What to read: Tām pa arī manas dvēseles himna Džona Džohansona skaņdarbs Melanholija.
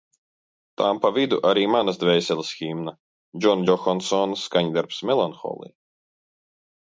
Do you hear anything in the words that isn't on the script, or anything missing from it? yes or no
yes